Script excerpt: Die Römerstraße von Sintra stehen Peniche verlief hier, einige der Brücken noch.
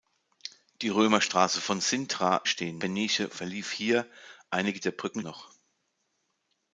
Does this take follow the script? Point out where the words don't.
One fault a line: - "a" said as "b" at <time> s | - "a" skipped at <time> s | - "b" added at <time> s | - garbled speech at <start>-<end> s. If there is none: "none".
none